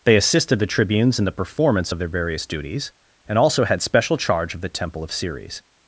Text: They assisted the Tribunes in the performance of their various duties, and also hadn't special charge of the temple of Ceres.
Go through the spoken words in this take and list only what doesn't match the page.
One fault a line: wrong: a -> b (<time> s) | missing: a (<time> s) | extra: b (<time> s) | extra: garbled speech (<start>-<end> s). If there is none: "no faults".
wrong: hadn't -> had (3.6 s)